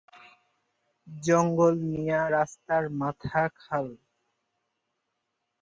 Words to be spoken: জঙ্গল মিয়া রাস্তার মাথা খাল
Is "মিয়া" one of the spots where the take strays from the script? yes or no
no